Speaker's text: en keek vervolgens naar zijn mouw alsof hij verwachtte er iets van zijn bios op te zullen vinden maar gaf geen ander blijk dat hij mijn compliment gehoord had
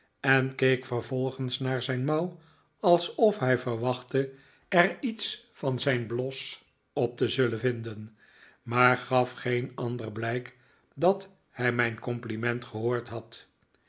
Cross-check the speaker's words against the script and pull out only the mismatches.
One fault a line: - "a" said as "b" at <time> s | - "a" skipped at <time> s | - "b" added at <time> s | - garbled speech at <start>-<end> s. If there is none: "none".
none